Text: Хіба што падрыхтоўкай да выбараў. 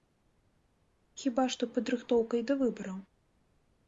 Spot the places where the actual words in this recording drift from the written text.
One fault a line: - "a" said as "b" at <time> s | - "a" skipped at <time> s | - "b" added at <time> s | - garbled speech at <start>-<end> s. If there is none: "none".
none